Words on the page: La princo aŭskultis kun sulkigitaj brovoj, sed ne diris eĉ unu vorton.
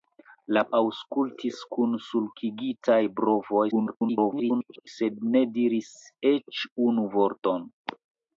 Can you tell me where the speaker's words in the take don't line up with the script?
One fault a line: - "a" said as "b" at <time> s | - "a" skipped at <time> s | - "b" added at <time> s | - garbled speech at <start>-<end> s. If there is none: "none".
- "princo" skipped at 0.6 s
- garbled speech at 3.7-4.9 s